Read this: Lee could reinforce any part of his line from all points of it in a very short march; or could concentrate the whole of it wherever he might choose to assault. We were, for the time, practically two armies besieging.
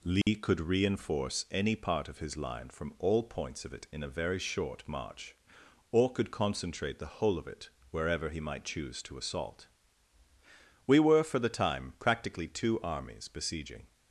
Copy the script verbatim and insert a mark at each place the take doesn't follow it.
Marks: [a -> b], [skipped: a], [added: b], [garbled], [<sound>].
Lee [dropout] could reinforce any part of his line from all points of it in a very short march; or could concentrate the whole of it wherever he might choose to assault. We were, for the time, practically two armies besieging.